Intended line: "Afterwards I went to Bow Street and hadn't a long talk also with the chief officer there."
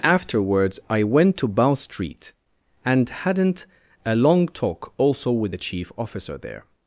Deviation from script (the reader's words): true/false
false